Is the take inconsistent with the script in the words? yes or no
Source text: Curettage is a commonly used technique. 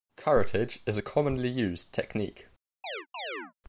no